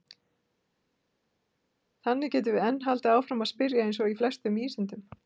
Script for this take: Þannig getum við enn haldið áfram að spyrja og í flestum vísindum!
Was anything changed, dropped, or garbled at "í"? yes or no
no